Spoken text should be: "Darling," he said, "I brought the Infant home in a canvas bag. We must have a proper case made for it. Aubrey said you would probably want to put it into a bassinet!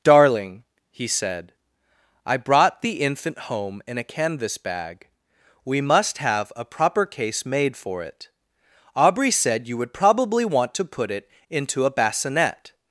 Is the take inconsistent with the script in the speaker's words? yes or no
no